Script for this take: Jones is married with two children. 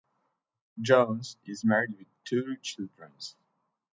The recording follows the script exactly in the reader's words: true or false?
true